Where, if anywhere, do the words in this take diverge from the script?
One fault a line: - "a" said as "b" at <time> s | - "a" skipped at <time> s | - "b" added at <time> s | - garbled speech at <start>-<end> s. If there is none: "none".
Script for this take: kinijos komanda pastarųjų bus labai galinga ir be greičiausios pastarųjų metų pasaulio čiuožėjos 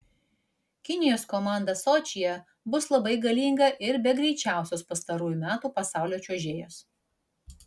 - "pastarųjų" said as "sočyje" at 1.8 s